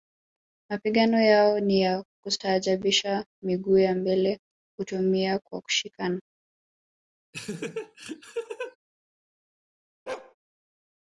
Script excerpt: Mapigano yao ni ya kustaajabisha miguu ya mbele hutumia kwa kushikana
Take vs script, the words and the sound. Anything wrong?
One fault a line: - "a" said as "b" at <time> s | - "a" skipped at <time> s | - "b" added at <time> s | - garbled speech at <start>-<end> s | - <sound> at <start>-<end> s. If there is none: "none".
- laugh at 7.3-8.8 s
- bark at 10.1-10.3 s